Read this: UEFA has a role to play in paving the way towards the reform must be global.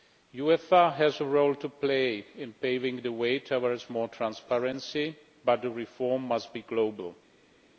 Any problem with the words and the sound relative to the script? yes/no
yes